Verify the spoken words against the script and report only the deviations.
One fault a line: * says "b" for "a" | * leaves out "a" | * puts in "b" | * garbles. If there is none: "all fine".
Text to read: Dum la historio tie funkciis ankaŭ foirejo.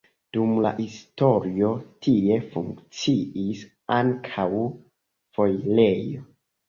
all fine